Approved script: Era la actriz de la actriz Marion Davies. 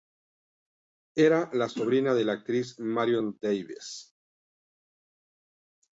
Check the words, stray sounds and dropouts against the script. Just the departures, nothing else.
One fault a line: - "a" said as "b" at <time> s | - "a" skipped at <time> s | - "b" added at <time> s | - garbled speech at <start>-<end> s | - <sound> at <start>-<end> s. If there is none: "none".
- "actriz" said as "sobrina" at 1.7 s